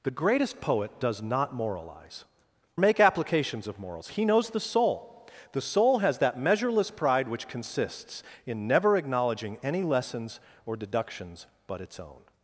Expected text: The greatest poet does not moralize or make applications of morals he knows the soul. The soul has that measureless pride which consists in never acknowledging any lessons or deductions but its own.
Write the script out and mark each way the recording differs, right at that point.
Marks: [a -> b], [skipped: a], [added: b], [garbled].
The greatest poet does not moralize [skipped: or] make applications of morals he knows the soul. The soul has that measureless pride which consists in never acknowledging any lessons or deductions but its own.